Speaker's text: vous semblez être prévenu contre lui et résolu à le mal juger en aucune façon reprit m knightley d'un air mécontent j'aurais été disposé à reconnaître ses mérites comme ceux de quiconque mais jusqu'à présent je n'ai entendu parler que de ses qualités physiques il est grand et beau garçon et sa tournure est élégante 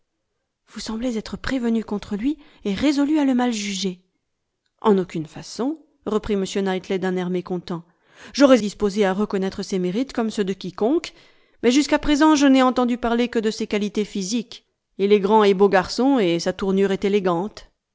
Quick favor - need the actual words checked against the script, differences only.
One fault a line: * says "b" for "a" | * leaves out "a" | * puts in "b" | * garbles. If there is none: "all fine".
* leaves out "été"